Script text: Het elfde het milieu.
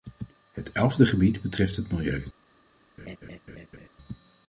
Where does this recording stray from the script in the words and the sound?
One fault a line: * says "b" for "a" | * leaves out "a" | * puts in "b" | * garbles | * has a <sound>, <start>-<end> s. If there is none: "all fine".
* puts in "gebied betreft"
* has a laugh, 3.0-3.9 s